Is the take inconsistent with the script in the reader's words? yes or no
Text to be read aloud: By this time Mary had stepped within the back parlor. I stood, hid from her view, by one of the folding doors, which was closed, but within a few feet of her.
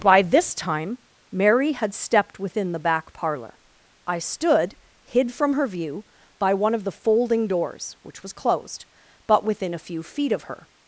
no